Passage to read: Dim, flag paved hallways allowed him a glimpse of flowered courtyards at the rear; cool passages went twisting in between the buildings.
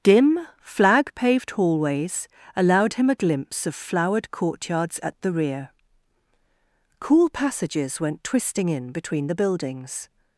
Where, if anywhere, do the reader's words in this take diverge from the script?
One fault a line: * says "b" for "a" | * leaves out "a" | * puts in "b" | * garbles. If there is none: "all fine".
all fine